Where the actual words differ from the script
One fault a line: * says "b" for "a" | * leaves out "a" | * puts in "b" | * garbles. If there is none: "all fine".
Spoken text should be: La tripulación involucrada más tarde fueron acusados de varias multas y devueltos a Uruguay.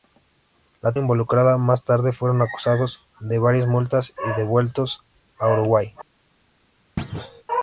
* leaves out "tripulación"